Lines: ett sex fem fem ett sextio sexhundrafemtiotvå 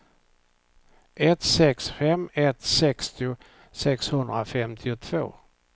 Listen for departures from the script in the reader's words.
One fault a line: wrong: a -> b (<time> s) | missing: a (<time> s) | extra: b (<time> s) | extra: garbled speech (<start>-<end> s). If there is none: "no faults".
missing: fem (2.3 s)